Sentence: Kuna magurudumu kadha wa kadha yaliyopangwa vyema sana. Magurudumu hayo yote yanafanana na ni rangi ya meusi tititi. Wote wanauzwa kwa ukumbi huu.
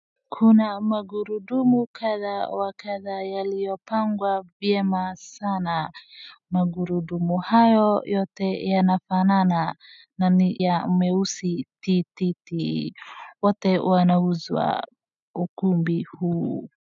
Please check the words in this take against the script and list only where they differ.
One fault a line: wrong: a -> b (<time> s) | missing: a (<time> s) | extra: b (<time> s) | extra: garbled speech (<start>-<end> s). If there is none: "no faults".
missing: rangi (10.6 s)
missing: kwa (14.8 s)